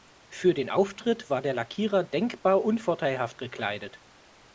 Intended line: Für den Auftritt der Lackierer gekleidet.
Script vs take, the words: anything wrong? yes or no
yes